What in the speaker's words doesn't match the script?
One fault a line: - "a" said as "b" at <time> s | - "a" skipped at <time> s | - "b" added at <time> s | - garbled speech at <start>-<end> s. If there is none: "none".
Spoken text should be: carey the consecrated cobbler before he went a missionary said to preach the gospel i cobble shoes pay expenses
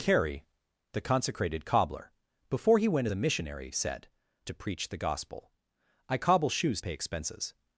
none